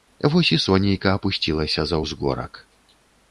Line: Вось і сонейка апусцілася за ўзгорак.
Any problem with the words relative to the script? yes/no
no